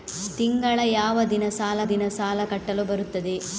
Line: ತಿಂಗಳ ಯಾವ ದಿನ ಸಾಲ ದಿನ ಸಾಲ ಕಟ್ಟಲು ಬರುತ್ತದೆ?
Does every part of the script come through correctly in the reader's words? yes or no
yes